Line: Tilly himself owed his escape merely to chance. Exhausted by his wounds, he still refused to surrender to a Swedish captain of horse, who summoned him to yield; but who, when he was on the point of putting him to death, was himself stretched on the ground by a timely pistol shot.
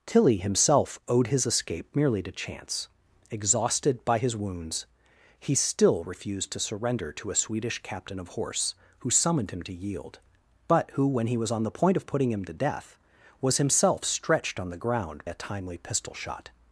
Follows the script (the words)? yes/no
no